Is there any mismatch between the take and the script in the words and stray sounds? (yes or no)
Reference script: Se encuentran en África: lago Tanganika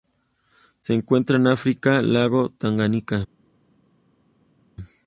no